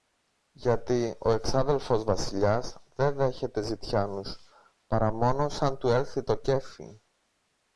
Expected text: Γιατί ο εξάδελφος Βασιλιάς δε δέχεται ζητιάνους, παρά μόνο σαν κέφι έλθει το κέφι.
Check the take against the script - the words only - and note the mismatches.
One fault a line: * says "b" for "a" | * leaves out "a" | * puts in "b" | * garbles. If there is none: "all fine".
* says "του" for "κέφι"